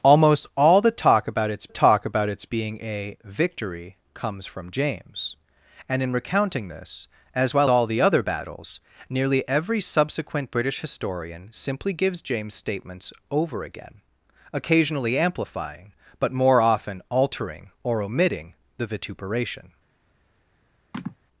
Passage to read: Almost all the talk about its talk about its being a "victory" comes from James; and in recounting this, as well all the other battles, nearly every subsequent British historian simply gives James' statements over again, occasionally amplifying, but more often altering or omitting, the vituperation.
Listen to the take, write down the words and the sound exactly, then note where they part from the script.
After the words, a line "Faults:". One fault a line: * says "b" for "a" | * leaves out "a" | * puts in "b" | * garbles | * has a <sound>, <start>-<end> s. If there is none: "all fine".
Almost all the talk about its talk about its being a "victory" comes from James; and in recounting this, as well all the other battles, nearly every subsequent British historian simply gives James' statements over again, occasionally amplifying, but more often altering or omitting, the vituperation.
Faults:
* has a sigh, 20.9-21.2 s